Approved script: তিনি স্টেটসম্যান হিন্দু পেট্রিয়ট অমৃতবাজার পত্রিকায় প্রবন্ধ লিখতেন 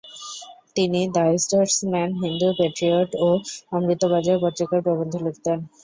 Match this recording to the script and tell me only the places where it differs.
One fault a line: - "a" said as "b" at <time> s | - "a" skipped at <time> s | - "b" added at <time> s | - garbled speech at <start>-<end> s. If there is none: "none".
- "দ্য" added at 1.1 s
- "ও" added at 3.2 s